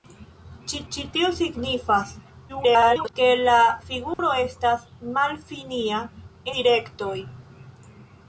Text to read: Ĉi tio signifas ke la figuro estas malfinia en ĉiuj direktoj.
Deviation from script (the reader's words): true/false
true